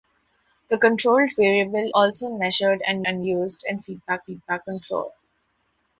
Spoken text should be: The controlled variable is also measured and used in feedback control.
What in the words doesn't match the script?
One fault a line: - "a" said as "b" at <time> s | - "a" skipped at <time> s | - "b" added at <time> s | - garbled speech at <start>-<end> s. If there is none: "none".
- "is" skipped at 1.9 s
- "and" added at 3.1 s
- "feedback" added at 4.2 s